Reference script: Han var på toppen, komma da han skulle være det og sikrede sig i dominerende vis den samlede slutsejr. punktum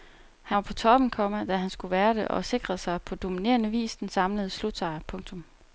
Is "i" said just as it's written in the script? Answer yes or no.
no